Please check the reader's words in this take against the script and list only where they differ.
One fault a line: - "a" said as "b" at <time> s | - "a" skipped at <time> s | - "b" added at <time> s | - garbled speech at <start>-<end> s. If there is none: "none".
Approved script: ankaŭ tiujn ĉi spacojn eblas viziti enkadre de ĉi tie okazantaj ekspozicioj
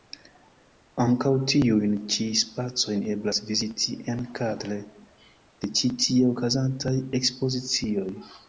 none